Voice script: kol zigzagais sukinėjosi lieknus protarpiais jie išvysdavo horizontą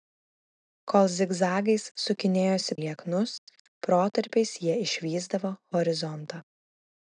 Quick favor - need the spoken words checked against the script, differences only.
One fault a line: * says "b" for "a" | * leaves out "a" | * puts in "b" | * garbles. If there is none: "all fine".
all fine